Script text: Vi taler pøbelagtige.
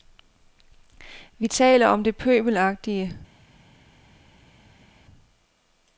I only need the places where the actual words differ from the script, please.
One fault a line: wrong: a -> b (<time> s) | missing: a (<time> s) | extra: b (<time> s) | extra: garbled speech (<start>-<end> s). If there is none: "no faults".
extra: om det (1.9 s)